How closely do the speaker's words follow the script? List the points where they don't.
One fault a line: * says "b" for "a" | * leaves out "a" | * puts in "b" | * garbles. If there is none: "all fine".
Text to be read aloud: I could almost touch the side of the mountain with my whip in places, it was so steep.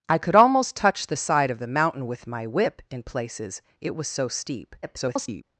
* garbles